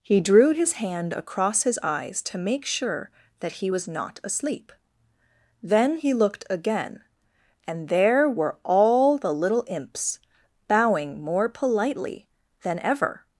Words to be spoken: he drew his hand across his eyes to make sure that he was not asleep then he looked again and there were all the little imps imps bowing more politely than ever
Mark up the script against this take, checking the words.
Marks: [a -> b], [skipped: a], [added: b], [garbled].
he drew his hand across his eyes to make sure that he was not asleep then he looked again and there were all the little imps [skipped: imps] bowing more politely than ever